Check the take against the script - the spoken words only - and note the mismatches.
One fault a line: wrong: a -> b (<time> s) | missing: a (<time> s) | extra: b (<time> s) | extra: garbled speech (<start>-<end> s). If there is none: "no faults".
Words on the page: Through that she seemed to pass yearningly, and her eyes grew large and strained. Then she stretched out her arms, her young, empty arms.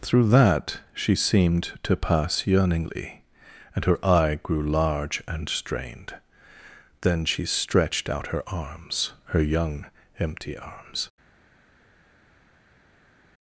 wrong: eyes -> eye (4.0 s)